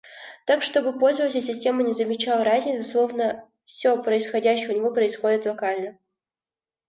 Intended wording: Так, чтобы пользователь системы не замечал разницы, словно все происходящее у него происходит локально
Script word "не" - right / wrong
right